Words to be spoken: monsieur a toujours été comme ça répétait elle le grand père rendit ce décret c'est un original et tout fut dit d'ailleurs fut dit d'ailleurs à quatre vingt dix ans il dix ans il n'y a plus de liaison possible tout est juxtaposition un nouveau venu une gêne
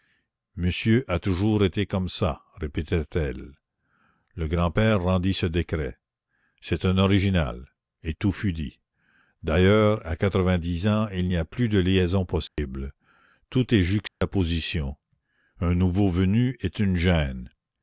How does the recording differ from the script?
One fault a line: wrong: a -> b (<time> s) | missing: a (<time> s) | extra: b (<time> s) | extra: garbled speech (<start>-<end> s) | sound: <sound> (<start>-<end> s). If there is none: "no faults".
missing: fut dit d'ailleurs (10.0 s)
missing: dix ans il (11.3 s)
sound: dropout (12.5-12.6 s)
sound: dropout (14.1-14.2 s)
extra: est (16.6 s)